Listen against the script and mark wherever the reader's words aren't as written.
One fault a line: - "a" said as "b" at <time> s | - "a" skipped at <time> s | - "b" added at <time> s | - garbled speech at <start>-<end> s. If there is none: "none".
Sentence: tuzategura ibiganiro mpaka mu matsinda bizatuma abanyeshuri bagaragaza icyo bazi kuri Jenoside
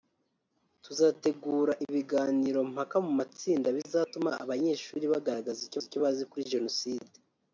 - "icyo" added at 5.9 s